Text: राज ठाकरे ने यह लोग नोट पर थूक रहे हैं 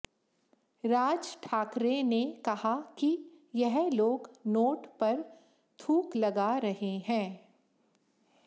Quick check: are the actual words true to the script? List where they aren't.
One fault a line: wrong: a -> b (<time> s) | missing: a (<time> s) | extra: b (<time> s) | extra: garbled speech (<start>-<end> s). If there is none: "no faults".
extra: कहा कि (2.5 s)
extra: लगा (6.1 s)